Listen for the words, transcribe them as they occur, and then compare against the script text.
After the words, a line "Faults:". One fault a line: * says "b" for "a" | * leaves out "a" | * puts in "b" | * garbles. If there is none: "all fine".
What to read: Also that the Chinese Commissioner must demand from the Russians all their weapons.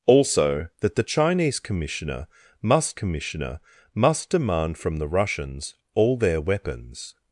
Also that the Chinese Commissioner must Commissioner must demand from the Russians all their weapons.
Faults:
* puts in "Commissioner must"